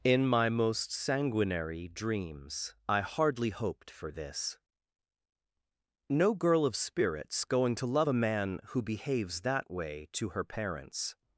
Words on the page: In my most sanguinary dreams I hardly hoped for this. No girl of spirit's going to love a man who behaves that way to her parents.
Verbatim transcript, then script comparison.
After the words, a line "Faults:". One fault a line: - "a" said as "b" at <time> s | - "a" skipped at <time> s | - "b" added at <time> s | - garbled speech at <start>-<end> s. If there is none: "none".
In my most sanguinary dreams I hardly hoped for this. No girl of spirit's going to love a man who behaves that way to her parents.
Faults:
none